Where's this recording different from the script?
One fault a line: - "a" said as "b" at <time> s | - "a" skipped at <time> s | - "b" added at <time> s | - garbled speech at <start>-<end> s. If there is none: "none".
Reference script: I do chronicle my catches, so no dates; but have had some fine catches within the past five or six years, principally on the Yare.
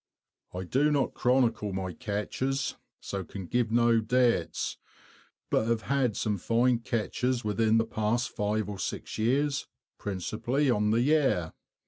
- "not" added at 0.9 s
- "can give" added at 3.2 s